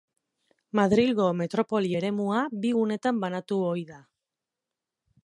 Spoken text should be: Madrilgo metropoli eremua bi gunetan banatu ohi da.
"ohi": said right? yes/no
yes